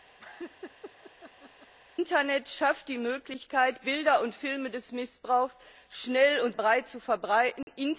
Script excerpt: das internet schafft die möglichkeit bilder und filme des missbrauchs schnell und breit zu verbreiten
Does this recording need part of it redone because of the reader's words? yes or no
no